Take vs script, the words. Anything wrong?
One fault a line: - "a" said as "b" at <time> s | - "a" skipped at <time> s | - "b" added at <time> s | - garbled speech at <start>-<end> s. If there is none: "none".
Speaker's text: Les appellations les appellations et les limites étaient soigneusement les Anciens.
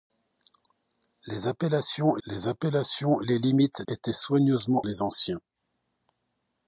none